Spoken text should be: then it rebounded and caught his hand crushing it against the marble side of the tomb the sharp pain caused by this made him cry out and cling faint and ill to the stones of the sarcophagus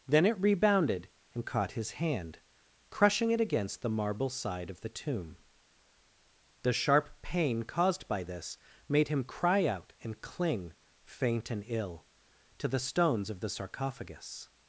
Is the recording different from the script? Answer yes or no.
no